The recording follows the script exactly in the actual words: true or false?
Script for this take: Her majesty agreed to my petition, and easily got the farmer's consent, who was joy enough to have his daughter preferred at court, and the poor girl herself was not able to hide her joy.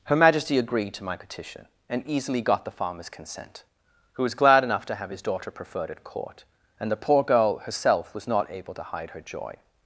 false